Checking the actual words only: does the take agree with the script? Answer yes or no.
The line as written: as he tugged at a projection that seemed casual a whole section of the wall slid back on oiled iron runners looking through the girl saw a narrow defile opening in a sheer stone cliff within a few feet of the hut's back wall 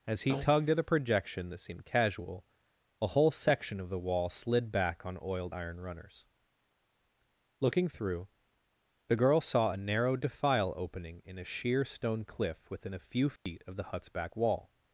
yes